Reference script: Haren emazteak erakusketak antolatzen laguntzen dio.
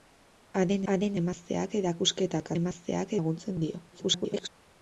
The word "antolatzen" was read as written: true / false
false